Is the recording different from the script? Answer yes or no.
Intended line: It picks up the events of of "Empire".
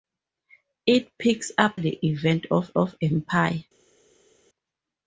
no